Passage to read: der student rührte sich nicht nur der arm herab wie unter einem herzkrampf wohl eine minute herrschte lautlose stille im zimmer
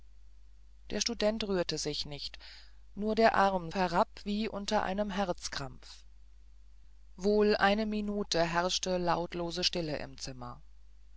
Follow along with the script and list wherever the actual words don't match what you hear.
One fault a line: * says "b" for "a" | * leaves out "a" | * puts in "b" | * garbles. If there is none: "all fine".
all fine